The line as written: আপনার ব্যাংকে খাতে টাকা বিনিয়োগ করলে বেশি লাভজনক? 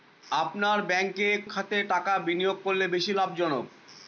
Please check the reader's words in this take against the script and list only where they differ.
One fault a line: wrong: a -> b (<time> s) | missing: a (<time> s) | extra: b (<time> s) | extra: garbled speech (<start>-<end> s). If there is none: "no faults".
no faults